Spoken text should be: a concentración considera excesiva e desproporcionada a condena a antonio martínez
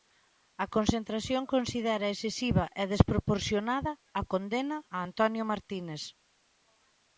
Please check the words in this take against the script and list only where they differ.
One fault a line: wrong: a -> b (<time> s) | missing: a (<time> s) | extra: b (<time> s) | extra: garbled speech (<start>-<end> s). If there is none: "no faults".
no faults